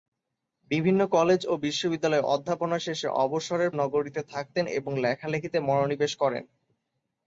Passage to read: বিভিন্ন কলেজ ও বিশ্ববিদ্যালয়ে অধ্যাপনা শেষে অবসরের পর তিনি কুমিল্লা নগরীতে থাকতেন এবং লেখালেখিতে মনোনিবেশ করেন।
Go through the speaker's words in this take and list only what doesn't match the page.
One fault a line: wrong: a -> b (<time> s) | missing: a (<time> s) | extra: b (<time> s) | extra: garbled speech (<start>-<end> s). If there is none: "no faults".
missing: পর তিনি কুমিল্লা (3.7 s)